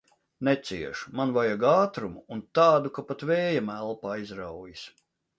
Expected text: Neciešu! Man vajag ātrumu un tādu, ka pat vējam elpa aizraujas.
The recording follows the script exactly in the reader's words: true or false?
true